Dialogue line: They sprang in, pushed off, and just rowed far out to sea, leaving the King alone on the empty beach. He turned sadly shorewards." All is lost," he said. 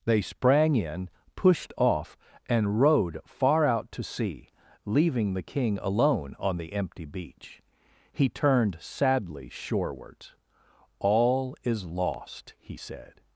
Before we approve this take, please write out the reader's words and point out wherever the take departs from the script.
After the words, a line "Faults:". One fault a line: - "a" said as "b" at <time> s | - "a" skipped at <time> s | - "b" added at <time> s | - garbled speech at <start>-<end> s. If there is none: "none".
They sprang in, pushed off, and rowed far out to sea, leaving the King alone on the empty beach. He turned sadly shorewards." All is lost," he said.
Faults:
- "just" skipped at 2.8 s